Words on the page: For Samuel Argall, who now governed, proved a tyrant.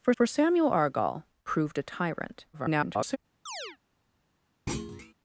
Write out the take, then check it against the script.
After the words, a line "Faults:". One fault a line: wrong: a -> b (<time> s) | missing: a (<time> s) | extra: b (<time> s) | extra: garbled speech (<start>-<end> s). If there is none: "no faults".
For for Samuel Argall, proved a tyrant. [garbled]
Faults:
extra: for (0.1 s)
missing: who now governed (1.2 s)
extra: garbled speech (2.5-3.2 s)